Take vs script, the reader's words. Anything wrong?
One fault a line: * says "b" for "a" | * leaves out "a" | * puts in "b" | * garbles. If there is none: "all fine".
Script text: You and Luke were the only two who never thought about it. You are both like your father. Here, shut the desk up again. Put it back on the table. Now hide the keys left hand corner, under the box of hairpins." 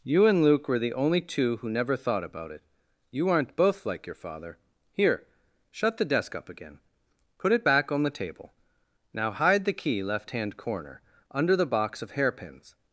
* says "aren't" for "are"
* says "key" for "keys"